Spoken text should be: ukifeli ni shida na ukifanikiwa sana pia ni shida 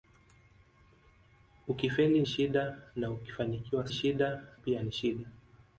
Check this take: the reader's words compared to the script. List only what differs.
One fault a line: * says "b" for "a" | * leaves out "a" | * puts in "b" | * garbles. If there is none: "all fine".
* leaves out "ni"
* says "shida" for "sana"